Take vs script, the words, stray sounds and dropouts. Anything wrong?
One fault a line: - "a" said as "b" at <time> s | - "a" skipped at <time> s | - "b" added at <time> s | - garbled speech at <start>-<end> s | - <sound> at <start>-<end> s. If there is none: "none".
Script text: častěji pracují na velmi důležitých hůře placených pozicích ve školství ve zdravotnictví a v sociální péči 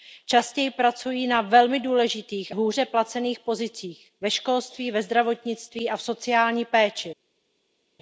none